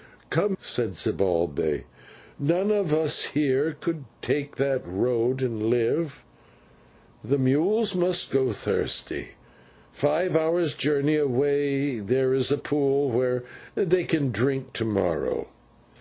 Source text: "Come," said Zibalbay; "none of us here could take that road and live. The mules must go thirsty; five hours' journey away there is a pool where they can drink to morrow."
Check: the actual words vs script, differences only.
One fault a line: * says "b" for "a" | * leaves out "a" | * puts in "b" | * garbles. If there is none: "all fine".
all fine